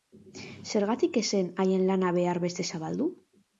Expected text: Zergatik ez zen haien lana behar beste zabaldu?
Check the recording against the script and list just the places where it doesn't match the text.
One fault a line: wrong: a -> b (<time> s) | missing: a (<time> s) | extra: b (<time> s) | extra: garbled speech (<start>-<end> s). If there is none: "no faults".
no faults